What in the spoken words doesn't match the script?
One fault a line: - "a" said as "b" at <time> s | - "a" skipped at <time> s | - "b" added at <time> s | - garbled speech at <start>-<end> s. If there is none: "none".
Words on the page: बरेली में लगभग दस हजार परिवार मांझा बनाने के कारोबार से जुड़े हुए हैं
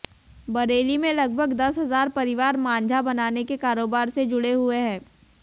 none